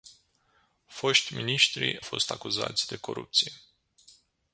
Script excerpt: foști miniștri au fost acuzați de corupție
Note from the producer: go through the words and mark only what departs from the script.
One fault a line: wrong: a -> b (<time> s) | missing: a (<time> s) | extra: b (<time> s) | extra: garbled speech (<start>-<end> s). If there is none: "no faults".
missing: au (2.0 s)